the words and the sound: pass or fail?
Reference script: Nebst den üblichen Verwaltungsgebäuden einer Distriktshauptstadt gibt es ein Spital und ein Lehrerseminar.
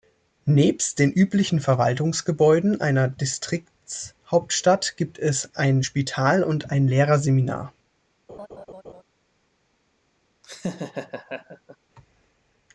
fail